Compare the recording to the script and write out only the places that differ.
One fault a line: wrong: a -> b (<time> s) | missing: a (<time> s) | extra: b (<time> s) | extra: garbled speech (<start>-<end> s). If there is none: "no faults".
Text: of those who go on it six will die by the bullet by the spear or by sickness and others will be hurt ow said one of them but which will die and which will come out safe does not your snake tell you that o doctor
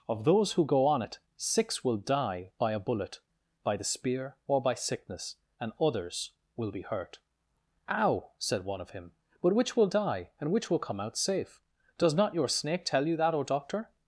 wrong: the -> a (2.7 s)
wrong: them -> him (8.9 s)